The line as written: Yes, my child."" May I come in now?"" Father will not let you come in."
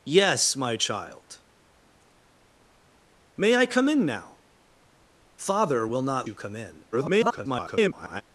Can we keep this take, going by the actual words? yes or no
no